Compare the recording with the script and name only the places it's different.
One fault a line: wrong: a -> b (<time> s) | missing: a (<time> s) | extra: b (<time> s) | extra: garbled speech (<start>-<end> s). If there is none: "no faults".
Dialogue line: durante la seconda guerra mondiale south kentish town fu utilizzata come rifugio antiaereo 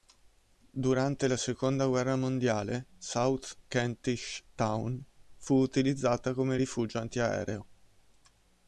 no faults